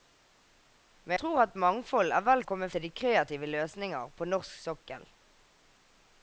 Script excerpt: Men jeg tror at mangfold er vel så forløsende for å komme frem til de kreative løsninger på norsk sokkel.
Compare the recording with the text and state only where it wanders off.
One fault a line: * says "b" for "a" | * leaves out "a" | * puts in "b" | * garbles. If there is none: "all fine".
* leaves out "jeg"
* leaves out "så forløsende for"
* leaves out "frem"